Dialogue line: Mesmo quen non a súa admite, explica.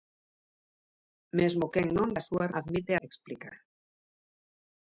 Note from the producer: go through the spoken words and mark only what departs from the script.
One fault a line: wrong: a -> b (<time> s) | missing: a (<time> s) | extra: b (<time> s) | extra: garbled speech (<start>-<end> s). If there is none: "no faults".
no faults